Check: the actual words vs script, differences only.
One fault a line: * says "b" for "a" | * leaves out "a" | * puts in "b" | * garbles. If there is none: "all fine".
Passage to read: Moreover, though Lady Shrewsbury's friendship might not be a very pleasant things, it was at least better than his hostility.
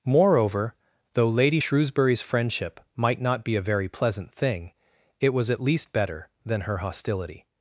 * says "thing" for "things"
* says "her" for "his"